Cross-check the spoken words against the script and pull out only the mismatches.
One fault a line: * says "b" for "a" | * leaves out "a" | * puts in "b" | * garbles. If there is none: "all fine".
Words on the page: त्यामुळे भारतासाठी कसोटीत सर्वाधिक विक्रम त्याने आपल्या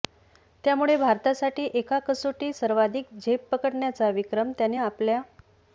* puts in "एका"
* puts in "झेप पकडण्याचा"